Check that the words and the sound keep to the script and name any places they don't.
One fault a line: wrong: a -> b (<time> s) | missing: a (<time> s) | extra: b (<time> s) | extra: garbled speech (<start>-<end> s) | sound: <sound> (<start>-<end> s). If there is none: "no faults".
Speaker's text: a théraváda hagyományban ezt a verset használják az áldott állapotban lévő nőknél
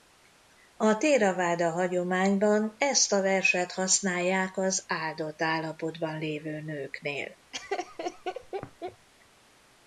sound: laugh (7.5-9.1 s)